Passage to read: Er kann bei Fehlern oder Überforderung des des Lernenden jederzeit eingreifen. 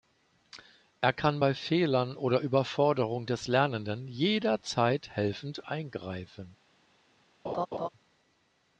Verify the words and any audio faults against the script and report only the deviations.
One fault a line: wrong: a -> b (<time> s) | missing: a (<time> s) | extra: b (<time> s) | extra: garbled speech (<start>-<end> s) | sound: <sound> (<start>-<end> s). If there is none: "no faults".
missing: des (3.5 s)
extra: helfend (5.1 s)
sound: laugh (7.4-7.9 s)